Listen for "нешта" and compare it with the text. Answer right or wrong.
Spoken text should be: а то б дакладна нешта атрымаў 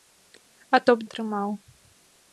wrong